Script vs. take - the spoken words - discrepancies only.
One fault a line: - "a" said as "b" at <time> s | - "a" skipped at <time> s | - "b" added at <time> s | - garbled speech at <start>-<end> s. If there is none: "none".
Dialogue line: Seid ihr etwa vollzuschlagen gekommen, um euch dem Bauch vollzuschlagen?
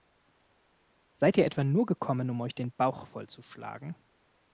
- "vollzuschlagen" said as "nur" at 1.6 s
- "dem" said as "den" at 2.6 s